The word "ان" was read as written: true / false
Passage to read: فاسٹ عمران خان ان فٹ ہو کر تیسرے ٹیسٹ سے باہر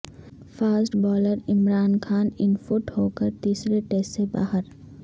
true